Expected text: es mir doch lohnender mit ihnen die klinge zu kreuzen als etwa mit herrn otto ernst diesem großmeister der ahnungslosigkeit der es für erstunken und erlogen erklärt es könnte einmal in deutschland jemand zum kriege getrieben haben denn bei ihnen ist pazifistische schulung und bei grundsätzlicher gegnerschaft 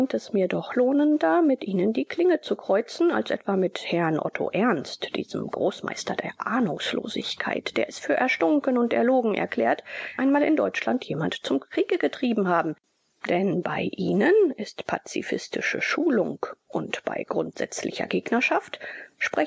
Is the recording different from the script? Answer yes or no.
yes